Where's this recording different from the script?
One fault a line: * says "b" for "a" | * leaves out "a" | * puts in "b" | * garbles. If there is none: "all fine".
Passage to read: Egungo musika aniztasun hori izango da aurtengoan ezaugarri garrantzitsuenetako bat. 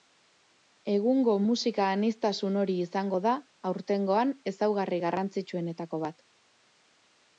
all fine